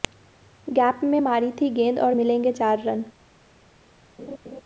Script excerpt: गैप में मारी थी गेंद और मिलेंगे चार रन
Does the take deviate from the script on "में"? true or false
false